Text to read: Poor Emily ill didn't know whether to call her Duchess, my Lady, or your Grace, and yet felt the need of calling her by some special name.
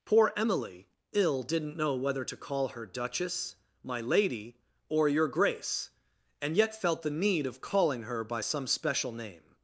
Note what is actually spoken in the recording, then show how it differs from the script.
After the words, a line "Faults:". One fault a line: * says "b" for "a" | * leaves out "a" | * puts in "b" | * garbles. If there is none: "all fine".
Poor Emily ill didn't know whether to call her Duchess, my Lady, or your Grace, and yet felt the need of calling her by some special name.
Faults:
all fine